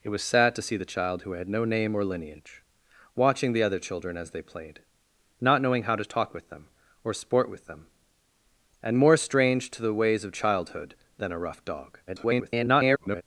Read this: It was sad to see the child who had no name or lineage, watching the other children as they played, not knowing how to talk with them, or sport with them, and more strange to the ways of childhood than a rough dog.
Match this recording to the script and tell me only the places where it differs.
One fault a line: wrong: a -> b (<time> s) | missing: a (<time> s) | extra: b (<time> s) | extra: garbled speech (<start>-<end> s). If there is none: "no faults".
extra: garbled speech (12.1-13.2 s)